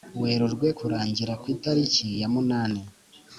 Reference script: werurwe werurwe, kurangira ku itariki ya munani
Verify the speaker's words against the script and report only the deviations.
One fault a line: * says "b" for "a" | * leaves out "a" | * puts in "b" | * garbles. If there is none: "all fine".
* leaves out "werurwe"